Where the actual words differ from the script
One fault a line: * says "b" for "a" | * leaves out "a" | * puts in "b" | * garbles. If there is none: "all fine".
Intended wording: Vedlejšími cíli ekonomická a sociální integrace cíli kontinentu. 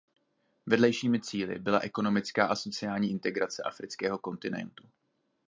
* puts in "byla"
* says "afrického" for "cíli"